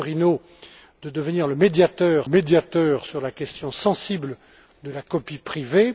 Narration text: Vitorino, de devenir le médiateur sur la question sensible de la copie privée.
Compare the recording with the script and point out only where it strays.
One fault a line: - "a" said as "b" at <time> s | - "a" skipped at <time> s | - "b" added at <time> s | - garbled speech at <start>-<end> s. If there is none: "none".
- "médiateur" added at 2.3 s